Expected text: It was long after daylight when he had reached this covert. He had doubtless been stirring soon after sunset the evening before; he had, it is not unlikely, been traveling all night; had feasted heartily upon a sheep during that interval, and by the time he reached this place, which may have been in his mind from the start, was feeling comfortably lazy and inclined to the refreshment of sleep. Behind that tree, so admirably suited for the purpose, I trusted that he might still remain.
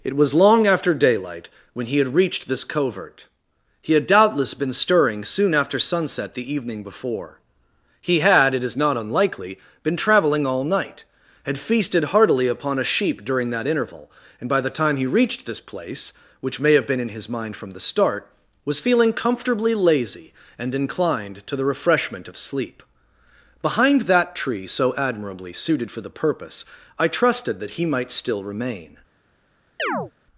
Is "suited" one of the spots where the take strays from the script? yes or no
no